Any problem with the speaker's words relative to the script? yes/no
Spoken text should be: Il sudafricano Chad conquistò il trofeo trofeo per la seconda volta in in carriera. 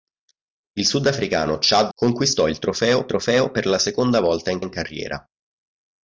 no